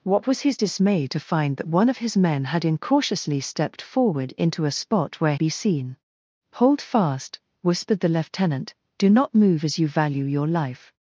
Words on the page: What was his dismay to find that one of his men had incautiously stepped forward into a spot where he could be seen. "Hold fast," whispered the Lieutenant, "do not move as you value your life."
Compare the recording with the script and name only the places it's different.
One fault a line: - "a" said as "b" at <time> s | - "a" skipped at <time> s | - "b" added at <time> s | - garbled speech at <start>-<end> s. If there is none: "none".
- "he could" skipped at 5.3 s